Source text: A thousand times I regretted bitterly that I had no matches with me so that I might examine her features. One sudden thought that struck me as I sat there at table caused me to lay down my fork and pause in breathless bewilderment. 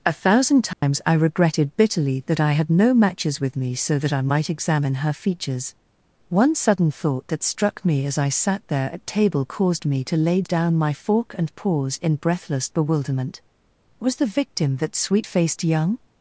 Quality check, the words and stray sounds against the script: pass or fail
fail